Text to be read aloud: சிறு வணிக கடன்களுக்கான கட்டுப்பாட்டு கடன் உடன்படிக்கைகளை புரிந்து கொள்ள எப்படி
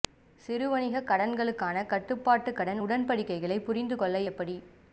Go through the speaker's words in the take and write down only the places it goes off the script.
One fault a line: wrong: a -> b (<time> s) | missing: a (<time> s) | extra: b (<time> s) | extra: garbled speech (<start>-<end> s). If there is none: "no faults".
no faults